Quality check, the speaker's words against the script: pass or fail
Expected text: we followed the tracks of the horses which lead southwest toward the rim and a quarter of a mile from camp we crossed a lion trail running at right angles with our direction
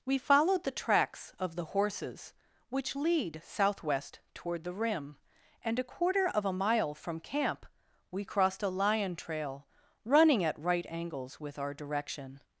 pass